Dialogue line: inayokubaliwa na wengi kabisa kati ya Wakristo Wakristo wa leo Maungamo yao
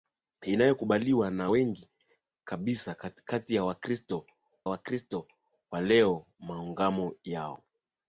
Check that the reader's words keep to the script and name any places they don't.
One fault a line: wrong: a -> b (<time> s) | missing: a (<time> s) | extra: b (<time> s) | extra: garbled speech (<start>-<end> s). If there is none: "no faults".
no faults